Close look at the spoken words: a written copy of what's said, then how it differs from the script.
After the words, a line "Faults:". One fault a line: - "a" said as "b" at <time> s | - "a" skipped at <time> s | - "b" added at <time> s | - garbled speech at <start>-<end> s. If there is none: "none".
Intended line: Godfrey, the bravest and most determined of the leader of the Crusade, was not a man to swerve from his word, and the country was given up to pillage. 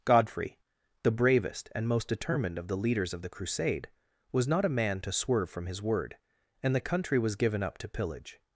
Godfrey, the bravest and most determined of the leaders of the Crusade, was not a man to swerve from his word, and the country was given up to pillage.
Faults:
- "leader" said as "leaders" at 2.8 s